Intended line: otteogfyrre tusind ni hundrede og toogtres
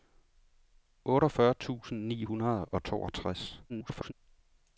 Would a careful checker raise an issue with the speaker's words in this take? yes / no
yes